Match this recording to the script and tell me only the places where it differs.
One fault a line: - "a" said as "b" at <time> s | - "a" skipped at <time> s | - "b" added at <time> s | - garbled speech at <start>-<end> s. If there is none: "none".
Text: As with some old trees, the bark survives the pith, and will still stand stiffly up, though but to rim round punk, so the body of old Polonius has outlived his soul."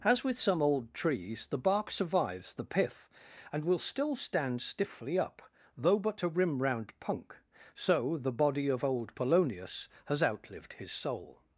none